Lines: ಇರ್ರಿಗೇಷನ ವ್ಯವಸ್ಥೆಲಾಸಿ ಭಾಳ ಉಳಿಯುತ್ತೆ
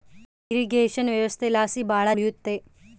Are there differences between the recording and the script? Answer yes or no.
no